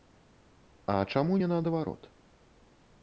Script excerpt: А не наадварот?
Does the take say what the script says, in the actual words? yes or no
no